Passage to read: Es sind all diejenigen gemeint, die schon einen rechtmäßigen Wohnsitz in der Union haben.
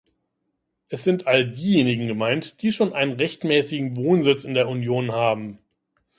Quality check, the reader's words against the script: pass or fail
pass